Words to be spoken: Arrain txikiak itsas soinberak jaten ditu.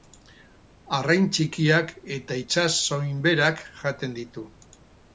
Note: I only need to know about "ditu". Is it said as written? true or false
true